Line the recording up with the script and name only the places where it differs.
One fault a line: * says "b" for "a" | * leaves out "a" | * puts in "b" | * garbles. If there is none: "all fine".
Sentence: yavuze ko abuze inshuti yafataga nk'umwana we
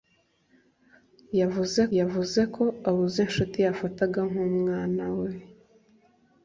* puts in "yavuze"